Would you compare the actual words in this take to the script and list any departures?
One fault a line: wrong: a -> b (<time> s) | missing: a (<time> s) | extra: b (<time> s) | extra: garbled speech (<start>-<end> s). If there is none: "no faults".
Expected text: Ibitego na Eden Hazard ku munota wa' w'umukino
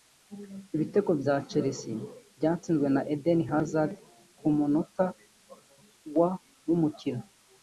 extra: bya Chelsea byatsinzwe (1.2 s)